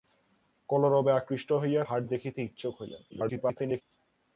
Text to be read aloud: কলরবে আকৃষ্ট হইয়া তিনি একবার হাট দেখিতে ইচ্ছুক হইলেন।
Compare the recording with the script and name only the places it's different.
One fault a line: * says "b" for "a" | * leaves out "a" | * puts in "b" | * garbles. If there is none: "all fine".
* leaves out "তিনি একবার"
* garbles